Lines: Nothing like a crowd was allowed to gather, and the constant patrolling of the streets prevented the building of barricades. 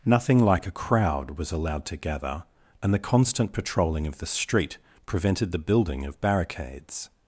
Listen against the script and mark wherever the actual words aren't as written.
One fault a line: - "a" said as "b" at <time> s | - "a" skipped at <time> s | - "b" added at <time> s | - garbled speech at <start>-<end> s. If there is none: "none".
- "streets" said as "street" at 4.3 s